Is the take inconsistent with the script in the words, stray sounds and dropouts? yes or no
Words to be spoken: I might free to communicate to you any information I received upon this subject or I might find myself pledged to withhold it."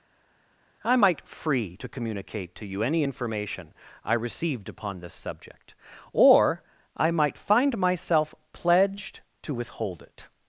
no